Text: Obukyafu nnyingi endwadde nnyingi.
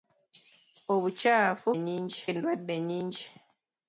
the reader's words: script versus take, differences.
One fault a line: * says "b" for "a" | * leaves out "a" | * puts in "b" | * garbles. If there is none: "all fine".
all fine